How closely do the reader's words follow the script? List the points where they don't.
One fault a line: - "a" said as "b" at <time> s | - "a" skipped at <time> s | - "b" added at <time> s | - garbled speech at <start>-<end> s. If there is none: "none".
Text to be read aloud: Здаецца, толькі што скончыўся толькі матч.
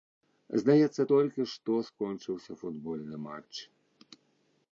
- "толькі" said as "футбольны" at 2.6 s